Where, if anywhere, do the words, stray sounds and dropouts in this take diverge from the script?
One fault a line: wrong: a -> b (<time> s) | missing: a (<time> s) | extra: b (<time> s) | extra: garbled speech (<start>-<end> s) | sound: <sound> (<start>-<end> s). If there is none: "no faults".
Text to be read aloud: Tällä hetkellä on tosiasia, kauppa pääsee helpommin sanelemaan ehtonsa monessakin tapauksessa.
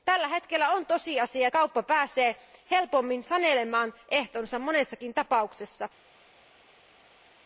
no faults